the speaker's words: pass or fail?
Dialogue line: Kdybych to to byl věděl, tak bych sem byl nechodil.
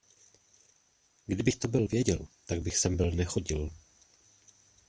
fail